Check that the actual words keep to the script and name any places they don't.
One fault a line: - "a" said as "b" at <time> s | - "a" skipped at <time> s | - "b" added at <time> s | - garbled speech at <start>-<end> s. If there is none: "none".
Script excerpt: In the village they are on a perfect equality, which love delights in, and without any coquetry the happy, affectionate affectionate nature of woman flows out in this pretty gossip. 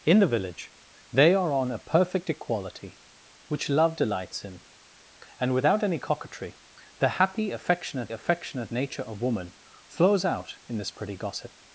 none